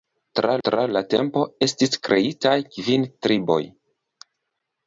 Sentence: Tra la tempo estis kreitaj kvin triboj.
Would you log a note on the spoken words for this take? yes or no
yes